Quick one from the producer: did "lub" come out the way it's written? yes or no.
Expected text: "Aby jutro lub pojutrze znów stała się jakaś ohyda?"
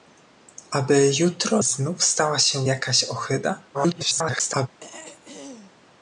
no